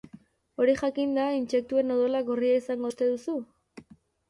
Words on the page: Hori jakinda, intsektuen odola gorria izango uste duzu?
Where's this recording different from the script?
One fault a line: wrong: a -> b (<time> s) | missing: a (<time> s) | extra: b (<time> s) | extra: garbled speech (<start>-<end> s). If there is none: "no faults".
no faults